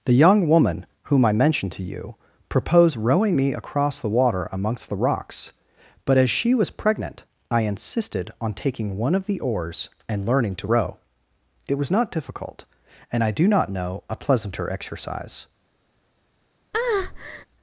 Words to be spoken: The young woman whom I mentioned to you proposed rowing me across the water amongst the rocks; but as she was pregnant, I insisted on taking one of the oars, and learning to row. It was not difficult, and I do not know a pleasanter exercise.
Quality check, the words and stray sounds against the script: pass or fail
fail